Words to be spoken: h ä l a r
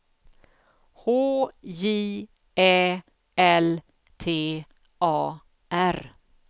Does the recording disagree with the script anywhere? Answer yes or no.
yes